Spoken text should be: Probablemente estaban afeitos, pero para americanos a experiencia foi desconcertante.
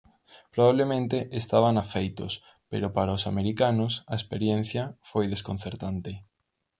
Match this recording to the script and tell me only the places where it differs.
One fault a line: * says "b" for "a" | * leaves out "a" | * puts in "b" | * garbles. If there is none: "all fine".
* puts in "os"